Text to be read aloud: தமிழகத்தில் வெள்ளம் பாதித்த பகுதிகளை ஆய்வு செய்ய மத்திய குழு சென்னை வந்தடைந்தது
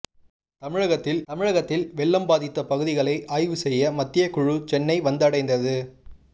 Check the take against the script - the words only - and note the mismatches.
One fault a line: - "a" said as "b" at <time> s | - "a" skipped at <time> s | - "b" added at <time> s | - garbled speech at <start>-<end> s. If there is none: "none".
- "தமிழகத்தில்" added at 1.3 s